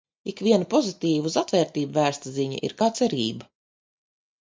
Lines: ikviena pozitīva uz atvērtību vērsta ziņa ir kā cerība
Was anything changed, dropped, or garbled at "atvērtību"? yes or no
no